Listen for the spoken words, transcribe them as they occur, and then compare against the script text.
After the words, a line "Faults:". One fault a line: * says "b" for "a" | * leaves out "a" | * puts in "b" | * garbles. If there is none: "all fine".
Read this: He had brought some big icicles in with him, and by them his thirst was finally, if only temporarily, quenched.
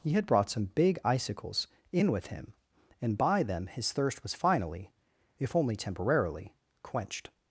He had brought some big icicles in with him, and by them his thirst was finally, if only temporarily, quenched.
Faults:
all fine